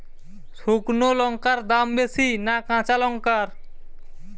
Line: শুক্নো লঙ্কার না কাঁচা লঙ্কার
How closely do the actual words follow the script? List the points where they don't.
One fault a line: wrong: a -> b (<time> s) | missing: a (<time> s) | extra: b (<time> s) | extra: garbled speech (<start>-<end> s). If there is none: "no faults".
extra: দাম বেশি (1.7 s)